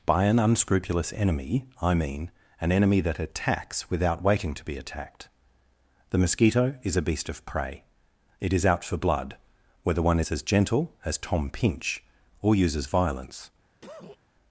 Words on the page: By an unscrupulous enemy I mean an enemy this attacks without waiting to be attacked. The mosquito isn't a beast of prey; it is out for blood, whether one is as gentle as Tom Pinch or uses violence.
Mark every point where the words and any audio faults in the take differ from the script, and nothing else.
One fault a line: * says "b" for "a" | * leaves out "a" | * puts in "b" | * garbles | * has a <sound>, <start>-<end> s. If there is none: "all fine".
* says "that" for "this"
* says "is" for "isn't"
* has a cough, 13.8-14.2 s